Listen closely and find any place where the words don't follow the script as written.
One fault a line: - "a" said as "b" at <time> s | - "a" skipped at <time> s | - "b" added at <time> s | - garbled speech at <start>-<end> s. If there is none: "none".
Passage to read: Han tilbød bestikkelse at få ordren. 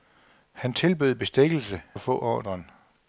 none